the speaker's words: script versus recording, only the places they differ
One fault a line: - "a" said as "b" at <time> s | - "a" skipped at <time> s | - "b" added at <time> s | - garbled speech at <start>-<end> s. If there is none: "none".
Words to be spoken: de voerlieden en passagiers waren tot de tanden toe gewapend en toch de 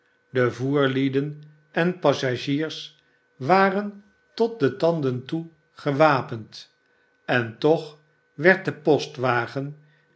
- "werd" added at 8.3 s